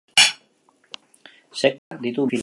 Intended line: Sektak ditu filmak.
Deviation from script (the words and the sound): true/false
true